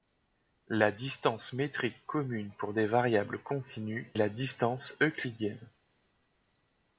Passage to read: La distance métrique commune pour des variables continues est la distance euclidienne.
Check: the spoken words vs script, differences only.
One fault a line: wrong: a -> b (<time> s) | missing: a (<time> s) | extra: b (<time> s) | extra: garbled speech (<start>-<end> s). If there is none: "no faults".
missing: est (4.1 s)